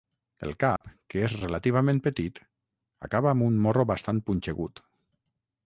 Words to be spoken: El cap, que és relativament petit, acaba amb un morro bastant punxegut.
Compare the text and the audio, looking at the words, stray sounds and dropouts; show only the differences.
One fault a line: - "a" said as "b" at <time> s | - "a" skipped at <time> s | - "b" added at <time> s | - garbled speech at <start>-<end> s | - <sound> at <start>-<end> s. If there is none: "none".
- dropout at 0.8-0.8 s